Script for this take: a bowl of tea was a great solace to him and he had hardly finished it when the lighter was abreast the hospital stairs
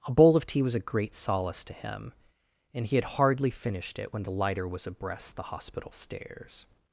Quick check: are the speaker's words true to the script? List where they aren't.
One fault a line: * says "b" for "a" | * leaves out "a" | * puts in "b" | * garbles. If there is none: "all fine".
all fine